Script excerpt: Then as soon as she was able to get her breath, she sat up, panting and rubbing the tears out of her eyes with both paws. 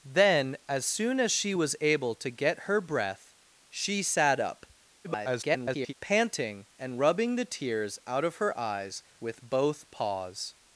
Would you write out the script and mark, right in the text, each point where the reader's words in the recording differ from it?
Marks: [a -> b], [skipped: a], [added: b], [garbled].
Then as soon as she was able to get her breath, she sat up, [garbled] panting and rubbing the tears out of her eyes with both paws.